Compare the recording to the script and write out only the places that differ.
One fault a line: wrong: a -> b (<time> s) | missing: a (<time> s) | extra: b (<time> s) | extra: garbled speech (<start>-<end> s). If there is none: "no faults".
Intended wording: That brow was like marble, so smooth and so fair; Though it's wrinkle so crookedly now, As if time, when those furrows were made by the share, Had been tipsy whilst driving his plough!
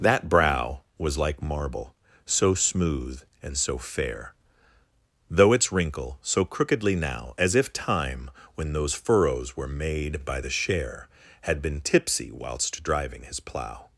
no faults